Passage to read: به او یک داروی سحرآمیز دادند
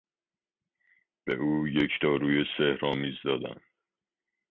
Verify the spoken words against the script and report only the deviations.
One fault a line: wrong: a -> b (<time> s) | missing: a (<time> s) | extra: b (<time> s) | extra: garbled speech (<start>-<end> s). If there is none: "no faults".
no faults